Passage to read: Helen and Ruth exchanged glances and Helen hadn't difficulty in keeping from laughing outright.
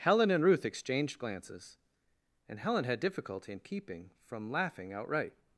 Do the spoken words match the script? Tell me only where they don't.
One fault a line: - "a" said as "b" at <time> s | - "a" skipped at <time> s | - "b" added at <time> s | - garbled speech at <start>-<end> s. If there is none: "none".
- "hadn't" said as "had" at 2.8 s